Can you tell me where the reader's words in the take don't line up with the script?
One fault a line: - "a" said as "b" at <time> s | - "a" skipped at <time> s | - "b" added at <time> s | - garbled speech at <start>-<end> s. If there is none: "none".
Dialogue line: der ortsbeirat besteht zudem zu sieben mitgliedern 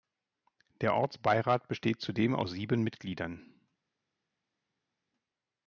- "zu" said as "aus" at 2.3 s